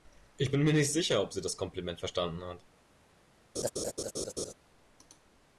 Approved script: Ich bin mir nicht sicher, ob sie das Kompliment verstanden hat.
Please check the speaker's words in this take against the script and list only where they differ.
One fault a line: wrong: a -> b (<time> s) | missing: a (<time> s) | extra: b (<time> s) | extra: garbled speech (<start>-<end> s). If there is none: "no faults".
no faults